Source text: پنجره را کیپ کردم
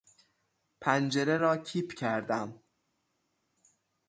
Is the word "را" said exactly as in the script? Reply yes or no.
yes